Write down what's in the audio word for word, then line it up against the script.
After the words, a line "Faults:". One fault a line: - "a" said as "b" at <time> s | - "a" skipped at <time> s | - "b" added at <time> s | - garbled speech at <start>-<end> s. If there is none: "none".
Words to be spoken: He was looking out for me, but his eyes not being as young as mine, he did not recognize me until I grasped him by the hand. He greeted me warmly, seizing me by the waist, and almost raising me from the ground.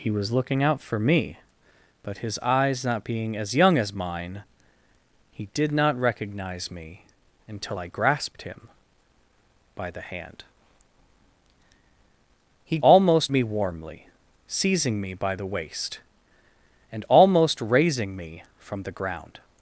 He was looking out for me, but his eyes not being as young as mine, he did not recognize me until I grasped him by the hand. He almost me warmly, seizing me by the waist, and almost raising me from the ground.
Faults:
- "greeted" said as "almost" at 12.8 s